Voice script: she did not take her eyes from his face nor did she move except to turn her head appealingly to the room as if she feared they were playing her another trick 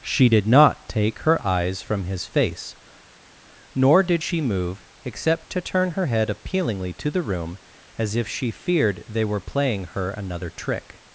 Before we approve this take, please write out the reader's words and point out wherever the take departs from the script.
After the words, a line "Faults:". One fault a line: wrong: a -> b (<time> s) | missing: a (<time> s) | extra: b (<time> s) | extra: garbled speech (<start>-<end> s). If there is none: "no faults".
she did not take her eyes from his face nor did she move except to turn her head appealingly to the room as if she feared they were playing her another trick
Faults:
no faults